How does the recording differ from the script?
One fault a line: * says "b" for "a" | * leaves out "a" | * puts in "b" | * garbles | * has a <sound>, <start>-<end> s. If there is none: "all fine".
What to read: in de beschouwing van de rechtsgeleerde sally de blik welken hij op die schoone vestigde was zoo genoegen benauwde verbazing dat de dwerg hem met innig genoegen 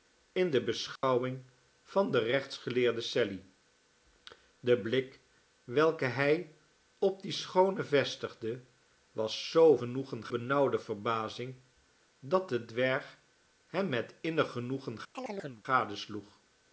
* has a dropout, 1.0-1.0 s
* has a chirp, 15.1-15.6 s